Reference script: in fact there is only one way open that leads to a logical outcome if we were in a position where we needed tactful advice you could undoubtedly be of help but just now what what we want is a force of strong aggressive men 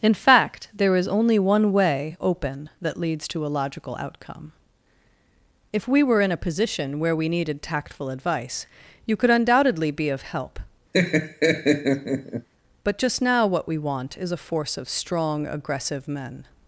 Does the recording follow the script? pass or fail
fail